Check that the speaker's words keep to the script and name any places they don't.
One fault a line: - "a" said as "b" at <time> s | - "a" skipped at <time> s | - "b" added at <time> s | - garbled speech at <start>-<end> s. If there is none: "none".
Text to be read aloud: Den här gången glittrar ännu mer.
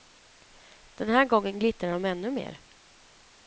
- "de" added at 1.9 s